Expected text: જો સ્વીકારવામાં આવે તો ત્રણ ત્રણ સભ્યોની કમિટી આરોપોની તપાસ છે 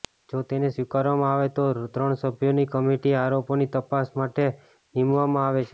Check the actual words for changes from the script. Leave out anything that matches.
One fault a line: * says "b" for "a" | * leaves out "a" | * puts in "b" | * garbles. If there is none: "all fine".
* puts in "તેને"
* leaves out "ત્રણ"
* puts in "માટે નીમવામાં આવે"